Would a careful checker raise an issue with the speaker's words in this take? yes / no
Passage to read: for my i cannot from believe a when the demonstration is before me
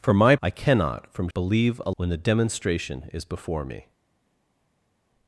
no